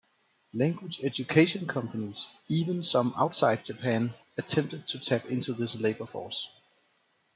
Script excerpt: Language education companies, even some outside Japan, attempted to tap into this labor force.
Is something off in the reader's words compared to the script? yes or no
no